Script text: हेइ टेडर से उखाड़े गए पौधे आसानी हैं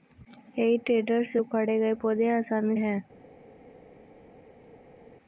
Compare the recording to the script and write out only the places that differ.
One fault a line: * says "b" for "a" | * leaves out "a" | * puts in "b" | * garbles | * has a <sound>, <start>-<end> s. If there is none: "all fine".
all fine